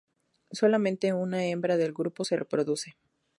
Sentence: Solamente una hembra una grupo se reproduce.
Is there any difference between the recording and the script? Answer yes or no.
yes